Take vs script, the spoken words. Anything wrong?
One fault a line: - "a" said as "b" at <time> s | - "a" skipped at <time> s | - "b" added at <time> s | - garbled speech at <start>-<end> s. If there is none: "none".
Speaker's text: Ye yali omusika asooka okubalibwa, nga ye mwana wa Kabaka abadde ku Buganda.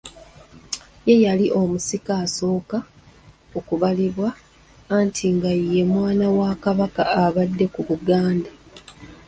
- "anti" added at 5.0 s